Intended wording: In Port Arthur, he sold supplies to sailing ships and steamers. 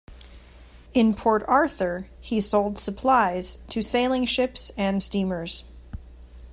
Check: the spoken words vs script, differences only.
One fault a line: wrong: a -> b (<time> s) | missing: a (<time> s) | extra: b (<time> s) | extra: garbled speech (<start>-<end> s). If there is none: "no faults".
no faults